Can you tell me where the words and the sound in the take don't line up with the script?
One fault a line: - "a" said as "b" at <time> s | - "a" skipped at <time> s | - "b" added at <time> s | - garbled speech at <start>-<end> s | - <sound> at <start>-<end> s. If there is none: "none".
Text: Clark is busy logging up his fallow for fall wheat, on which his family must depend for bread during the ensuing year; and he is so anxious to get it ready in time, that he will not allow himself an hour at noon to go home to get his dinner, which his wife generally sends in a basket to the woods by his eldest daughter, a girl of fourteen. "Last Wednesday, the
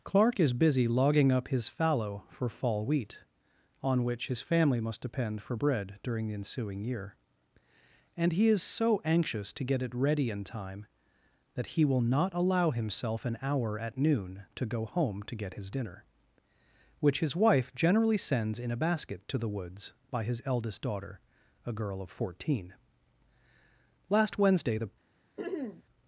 - throat clearing at 25.4-25.8 s